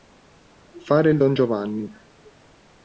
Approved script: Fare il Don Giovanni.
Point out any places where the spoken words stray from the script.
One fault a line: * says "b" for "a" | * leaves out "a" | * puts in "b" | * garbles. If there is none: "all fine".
all fine